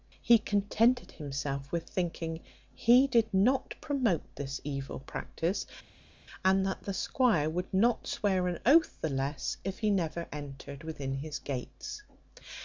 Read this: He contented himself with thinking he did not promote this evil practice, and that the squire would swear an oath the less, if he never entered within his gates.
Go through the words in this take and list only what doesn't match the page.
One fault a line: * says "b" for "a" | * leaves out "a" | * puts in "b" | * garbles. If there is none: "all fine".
* puts in "not"